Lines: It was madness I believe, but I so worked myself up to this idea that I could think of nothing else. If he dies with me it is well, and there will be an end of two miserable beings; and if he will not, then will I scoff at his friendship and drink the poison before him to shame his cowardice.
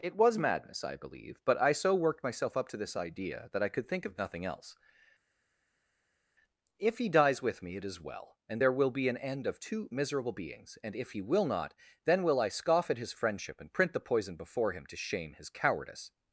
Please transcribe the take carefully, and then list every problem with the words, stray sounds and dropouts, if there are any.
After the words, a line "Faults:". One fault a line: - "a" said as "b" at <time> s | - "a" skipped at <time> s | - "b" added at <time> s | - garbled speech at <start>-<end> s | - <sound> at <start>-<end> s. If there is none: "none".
It was madness I believe, but I so worked myself up to this idea that I could think of nothing else. If he dies with me it is well, and there will be an end of two miserable beings; and if he will not, then will I scoff at his friendship and print the poison before him to shame his cowardice.
Faults:
- "drink" said as "print" at 13.7 s